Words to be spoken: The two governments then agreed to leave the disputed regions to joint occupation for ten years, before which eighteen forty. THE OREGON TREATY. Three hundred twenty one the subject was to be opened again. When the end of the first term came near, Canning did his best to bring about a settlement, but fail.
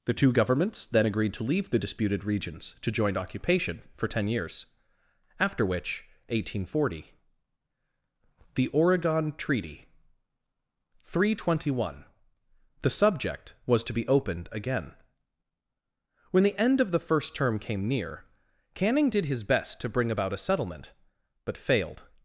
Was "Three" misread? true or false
false